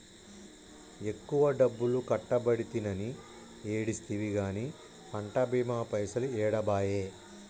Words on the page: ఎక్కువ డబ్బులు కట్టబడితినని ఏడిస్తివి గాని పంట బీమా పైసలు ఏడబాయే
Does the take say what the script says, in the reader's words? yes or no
yes